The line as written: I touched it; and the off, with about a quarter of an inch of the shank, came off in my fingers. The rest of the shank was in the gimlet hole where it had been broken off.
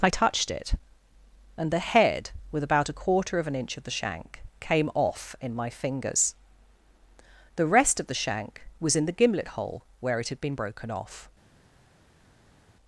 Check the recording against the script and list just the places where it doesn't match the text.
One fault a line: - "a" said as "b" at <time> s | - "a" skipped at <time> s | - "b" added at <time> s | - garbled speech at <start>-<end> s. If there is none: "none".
- "off" said as "head" at 1.8 s